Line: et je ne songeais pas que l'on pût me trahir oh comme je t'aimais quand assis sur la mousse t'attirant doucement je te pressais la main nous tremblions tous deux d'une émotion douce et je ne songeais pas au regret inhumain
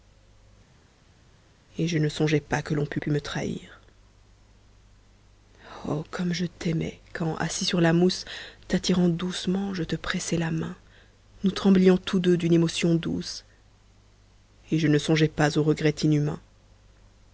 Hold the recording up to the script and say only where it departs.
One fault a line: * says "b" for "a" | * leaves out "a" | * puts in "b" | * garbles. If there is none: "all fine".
* puts in "pût"